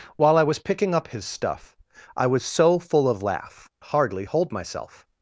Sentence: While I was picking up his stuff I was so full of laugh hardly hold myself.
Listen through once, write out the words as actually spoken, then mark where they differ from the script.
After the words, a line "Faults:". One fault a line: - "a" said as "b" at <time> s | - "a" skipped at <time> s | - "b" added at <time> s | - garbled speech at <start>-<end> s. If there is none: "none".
While I was picking up his stuff I was so full of laugh hardly hold myself.
Faults:
none